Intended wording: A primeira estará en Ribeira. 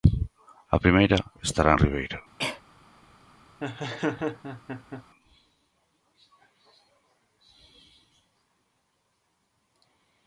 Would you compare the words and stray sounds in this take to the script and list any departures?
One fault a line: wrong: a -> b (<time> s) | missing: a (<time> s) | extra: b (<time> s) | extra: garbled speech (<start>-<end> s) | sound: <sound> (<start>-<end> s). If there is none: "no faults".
sound: cough (2.4-2.6 s)
sound: laugh (3.6-5.0 s)